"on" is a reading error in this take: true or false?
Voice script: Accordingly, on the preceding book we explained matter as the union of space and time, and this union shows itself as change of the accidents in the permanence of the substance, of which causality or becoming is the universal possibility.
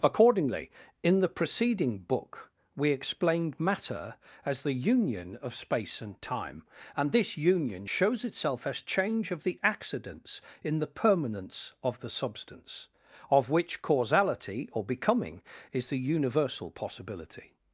true